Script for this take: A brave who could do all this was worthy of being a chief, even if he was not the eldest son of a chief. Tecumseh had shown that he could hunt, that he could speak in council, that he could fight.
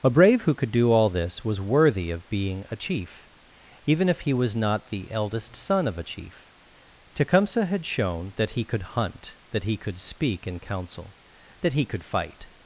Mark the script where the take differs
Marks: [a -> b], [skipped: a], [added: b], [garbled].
A brave who could do all this was worthy of being a chief, even if he was not the eldest son of a chief. Tecumseh had shown that he could hunt, that he could speak in council, that he could fight.